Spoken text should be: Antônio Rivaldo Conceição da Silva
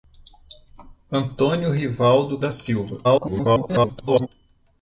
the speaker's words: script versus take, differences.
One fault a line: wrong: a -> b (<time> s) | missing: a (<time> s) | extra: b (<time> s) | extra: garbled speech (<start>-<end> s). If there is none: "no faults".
missing: Conceição (2.4 s)
extra: garbled speech (3.0-4.3 s)